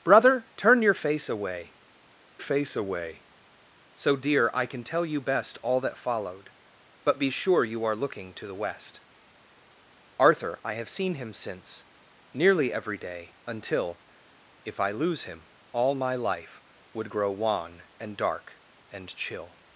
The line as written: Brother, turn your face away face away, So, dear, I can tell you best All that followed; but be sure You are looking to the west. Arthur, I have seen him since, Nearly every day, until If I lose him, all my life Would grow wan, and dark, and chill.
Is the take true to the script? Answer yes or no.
yes